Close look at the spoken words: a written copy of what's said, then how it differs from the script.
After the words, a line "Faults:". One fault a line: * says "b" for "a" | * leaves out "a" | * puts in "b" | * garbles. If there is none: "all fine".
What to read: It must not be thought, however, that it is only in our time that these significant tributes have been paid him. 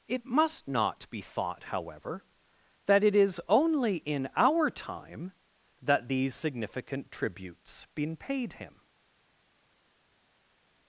It must not be thought, however, that it is only in our time that these significant tributes been paid him.
Faults:
* leaves out "have"